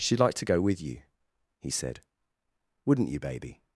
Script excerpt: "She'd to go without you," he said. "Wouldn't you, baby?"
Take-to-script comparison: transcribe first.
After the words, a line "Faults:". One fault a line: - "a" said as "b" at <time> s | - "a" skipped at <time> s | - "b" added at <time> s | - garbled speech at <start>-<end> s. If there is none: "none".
"She'd like to go with you," he said. "Wouldn't you, baby?"
Faults:
- "like" added at 0.2 s
- "without" said as "with" at 0.6 s